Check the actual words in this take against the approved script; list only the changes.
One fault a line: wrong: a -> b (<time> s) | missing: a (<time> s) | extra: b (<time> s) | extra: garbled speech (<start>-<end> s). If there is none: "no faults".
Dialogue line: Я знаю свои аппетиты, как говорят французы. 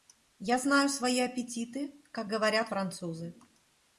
no faults